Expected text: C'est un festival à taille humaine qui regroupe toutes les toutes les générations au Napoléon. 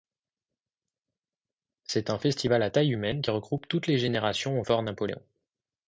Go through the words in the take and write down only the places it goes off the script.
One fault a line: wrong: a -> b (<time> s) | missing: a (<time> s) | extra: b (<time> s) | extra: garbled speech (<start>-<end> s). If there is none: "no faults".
missing: toutes les (4.0 s)
extra: Fort (4.6 s)